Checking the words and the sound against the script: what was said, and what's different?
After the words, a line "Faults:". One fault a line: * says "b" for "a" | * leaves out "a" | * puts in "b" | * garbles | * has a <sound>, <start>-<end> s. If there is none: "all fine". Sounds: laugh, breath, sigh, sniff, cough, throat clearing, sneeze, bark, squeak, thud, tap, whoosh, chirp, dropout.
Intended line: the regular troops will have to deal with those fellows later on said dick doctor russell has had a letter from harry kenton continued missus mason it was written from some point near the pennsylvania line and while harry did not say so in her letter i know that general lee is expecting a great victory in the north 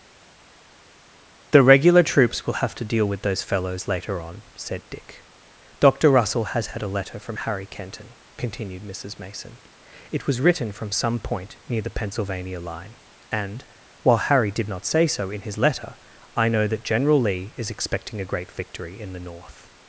the regular troops will have to deal with those fellows later on said dick doctor russell has had a letter from harry kenton continued missus mason it was written from some point near the pennsylvania line and while harry did not say so in his letter i know that general lee is expecting a great victory in the north
Faults:
* says "his" for "her"